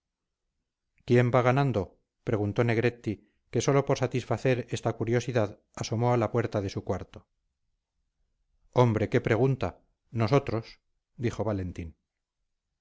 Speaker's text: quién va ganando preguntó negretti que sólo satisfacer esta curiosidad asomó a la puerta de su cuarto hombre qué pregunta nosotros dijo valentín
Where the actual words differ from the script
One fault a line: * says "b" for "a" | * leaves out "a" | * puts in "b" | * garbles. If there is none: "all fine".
* puts in "por"